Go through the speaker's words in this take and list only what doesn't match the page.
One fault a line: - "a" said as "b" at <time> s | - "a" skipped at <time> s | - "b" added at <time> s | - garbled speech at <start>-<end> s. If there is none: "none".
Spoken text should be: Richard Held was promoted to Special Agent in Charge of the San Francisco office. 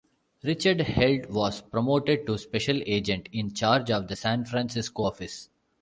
none